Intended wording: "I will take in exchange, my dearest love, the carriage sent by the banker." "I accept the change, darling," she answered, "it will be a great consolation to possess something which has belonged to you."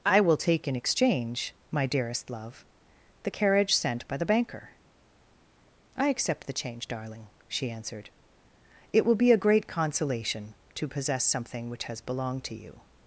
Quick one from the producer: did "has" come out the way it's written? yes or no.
yes